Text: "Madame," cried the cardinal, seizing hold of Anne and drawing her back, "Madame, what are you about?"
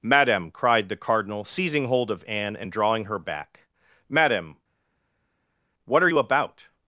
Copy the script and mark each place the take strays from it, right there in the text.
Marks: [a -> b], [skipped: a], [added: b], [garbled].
"Madame," cried the cardinal, seizing hold of Anne and drawing her back, "Madame, what are you about?"